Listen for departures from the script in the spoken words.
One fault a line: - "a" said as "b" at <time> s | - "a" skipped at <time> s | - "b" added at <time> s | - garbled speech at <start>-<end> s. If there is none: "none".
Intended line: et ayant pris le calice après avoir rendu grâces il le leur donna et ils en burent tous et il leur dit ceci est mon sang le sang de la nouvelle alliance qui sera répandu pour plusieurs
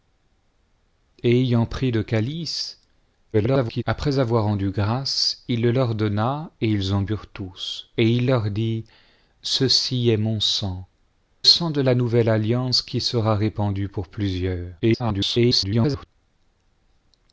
- garbled speech at 3.3-3.8 s
- "le" skipped at 10.9 s
- garbled speech at 14.8-16.1 s